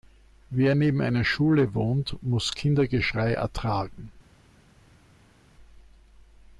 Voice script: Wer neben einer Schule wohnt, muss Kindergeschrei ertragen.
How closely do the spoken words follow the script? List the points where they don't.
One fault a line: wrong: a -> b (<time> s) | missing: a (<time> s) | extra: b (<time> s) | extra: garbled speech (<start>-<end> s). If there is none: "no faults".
no faults